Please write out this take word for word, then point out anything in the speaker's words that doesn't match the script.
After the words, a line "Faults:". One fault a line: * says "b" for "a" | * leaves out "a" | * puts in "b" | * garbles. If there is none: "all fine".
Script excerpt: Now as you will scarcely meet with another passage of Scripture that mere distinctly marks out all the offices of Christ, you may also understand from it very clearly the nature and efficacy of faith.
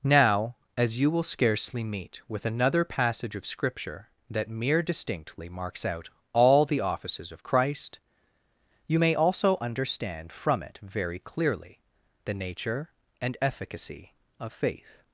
Now as you will scarcely meet with another passage of Scripture that mere distinctly marks out all the offices of Christ, you may also understand from it very clearly the nature and efficacy of faith.
Faults:
all fine